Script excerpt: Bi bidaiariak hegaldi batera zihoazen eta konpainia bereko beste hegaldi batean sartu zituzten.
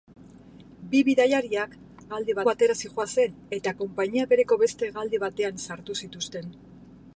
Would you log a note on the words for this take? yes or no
no